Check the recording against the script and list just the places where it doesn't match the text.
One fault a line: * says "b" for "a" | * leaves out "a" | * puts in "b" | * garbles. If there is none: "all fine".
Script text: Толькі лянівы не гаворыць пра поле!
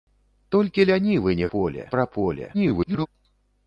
* says "поле" for "гаворыць"
* garbles